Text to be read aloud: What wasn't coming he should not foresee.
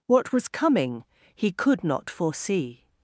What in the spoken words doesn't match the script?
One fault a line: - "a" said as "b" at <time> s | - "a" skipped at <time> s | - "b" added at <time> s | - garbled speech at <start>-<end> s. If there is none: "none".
- "wasn't" said as "was" at 0.3 s
- "should" said as "could" at 1.5 s